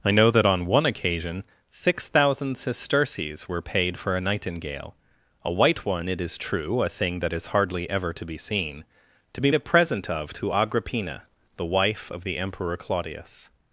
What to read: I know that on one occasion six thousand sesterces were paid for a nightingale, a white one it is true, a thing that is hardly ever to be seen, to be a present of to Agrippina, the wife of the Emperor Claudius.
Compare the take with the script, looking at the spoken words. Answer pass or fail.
pass